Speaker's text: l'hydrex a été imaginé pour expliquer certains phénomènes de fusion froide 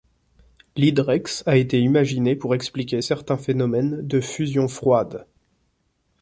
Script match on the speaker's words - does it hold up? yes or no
yes